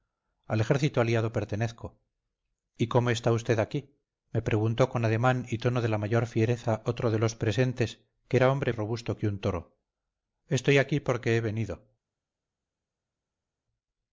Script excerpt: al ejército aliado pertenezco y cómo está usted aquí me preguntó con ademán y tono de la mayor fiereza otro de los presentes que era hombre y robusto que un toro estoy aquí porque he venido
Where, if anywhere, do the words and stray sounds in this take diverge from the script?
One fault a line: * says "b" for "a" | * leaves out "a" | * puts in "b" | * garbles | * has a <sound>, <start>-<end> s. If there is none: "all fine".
all fine